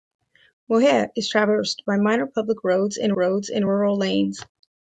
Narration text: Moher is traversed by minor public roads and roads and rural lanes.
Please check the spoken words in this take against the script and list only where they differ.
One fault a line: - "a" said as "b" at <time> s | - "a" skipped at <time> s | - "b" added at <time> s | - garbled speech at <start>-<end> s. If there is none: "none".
none